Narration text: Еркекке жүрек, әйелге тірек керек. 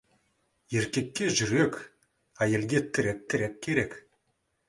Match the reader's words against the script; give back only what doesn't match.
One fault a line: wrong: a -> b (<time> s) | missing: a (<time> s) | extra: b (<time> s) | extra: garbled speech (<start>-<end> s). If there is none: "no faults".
extra: тірек (3.3 s)